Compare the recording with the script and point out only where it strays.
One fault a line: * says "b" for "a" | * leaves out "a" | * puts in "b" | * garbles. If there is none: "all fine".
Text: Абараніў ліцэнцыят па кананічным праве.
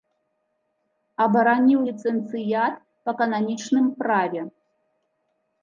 all fine